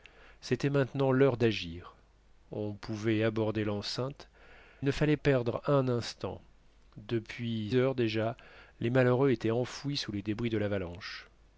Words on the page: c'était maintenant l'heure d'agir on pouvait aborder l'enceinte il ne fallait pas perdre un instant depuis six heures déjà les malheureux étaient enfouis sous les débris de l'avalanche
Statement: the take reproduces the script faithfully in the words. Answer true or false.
false